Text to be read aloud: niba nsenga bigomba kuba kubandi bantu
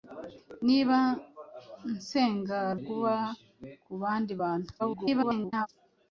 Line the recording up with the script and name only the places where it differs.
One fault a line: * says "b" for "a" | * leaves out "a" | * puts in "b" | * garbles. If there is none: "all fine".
* leaves out "bigomba"
* garbles